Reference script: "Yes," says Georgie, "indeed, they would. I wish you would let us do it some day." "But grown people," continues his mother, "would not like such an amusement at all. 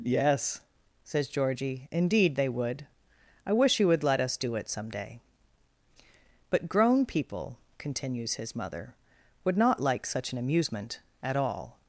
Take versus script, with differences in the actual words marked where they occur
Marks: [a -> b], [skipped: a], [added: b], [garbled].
"Yes," says Georgie, "indeed, they would. I wish you would let us do it some day." "But grown people," continues his mother, "would not like such an amusement at all.